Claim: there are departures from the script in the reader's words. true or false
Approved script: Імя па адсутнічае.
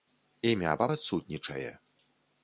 false